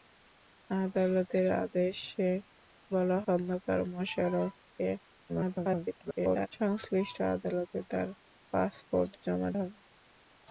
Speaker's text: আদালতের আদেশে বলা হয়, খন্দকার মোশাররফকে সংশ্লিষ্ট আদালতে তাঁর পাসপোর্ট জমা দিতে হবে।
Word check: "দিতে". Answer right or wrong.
wrong